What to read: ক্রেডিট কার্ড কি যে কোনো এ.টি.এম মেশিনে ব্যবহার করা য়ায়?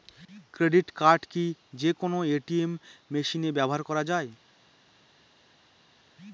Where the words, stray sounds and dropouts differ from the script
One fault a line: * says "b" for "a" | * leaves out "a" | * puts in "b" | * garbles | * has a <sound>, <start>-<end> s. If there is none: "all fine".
all fine